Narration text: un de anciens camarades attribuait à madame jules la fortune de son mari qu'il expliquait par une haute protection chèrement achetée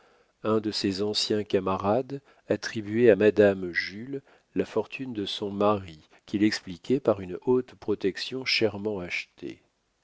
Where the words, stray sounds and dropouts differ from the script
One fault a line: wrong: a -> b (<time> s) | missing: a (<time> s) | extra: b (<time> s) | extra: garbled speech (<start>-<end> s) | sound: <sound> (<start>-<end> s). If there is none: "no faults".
extra: ses (0.7 s)